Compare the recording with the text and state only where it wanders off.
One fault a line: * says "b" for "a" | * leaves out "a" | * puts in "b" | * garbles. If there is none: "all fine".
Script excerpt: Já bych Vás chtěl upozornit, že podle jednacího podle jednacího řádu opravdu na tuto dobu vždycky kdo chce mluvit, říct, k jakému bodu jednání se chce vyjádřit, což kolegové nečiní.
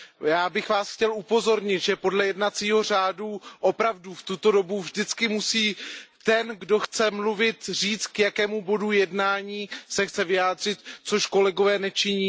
* leaves out "podle jednacího"
* says "v" for "na"
* puts in "musí ten"